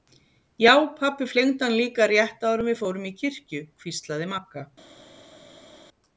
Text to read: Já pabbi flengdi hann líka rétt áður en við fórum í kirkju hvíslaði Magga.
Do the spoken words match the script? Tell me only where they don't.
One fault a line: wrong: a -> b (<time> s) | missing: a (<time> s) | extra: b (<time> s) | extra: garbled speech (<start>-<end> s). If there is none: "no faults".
no faults